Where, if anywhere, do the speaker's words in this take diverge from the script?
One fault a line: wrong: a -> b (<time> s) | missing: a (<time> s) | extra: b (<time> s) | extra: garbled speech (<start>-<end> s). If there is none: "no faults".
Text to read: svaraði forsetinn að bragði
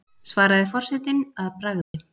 no faults